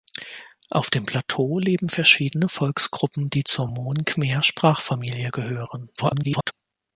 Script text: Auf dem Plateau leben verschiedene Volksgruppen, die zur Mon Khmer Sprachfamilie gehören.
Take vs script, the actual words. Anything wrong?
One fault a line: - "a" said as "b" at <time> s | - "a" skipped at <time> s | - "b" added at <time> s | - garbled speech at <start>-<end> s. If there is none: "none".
- garbled speech at 6.0-6.5 s